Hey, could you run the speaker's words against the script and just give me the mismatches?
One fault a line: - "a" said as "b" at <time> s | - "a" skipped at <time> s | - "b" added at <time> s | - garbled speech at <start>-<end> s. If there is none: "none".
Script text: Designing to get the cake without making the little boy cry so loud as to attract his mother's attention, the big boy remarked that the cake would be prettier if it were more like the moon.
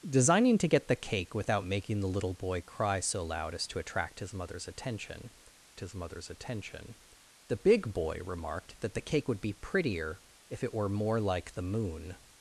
- "his mother's attention" added at 5.8 s